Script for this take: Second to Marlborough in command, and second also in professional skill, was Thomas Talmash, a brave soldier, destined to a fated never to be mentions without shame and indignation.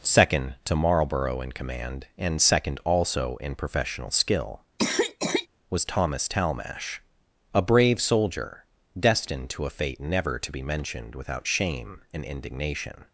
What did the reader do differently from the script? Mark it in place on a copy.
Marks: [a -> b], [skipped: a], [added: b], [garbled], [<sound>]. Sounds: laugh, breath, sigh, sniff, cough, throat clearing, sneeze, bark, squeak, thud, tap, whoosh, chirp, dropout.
Second to Marlborough in command, and second also in professional skill, [cough] was Thomas Talmash, a brave soldier, destined to a [fated -> fate] never to be [mentions -> mentioned] without shame and indignation.